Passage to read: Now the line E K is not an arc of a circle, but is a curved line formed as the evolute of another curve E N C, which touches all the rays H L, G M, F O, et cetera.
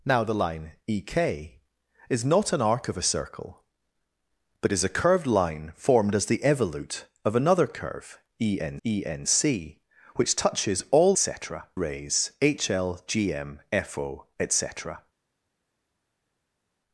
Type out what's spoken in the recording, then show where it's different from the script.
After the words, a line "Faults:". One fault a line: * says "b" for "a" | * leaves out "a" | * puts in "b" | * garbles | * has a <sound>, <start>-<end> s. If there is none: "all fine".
Now the line E K is not an arc of a circle, but is a curved line formed as the evolute of another curve E N E N C, which touches all cetera rays H L, G M, F O, et cetera.
Faults:
* puts in "E N"
* says "cetera" for "the"